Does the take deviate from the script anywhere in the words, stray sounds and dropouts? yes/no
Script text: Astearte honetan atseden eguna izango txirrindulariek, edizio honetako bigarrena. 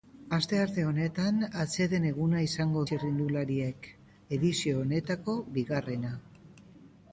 no